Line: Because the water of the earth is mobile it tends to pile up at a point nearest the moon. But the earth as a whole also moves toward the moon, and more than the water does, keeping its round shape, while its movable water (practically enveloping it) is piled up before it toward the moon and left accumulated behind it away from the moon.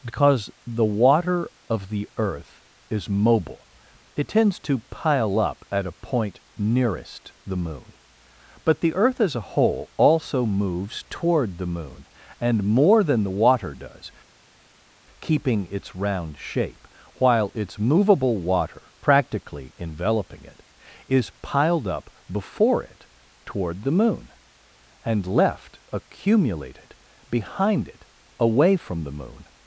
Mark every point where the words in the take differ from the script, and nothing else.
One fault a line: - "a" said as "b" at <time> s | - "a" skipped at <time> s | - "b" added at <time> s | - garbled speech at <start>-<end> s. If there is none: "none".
none